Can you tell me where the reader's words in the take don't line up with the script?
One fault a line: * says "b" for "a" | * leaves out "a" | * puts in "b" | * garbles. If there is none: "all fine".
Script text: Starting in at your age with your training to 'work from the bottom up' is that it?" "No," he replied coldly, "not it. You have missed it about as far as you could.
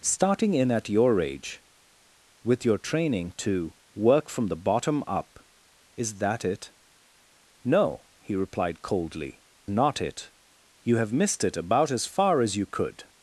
all fine